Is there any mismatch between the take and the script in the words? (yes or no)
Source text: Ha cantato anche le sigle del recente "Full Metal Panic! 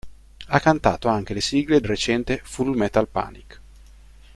yes